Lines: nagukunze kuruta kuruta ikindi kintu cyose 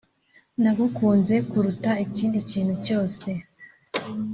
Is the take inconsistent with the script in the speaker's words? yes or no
yes